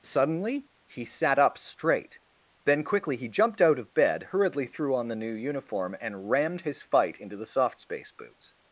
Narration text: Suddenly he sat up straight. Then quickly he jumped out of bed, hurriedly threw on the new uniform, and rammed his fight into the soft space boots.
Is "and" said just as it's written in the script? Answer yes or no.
yes